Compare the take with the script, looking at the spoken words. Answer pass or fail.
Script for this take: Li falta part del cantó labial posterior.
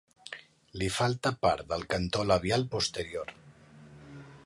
pass